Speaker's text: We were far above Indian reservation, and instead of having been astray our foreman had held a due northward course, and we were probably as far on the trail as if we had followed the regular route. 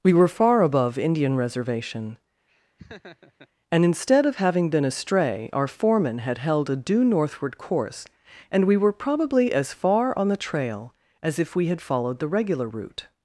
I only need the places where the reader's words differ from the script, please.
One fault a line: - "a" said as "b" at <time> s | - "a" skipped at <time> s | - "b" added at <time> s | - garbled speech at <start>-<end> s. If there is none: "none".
none